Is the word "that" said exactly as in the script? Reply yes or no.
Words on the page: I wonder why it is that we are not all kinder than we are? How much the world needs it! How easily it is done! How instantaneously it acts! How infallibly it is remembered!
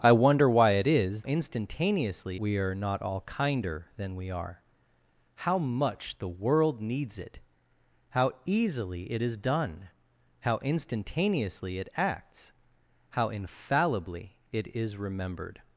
no